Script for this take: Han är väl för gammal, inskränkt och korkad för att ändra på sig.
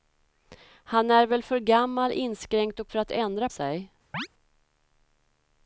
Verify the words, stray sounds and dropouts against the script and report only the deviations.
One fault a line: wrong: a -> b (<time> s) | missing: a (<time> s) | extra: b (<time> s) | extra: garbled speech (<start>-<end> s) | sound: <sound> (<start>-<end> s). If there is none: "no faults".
missing: korkad (2.9 s)
missing: på (3.5 s)
sound: chirp (4.1-4.3 s)